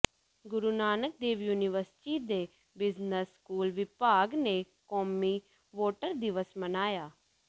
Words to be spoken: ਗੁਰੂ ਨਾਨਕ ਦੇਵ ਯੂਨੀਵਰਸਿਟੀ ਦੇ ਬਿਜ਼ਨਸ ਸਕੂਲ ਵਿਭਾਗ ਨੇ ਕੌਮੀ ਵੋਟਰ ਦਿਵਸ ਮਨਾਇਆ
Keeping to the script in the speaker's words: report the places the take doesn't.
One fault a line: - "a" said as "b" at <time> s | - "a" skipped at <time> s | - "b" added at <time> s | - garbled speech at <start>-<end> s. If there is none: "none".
none